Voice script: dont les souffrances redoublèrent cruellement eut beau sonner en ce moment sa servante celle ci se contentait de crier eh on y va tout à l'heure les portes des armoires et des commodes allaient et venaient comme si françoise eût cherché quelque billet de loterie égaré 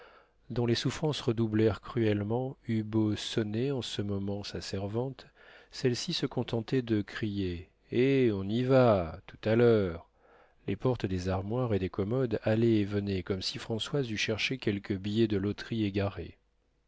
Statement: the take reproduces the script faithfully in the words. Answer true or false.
true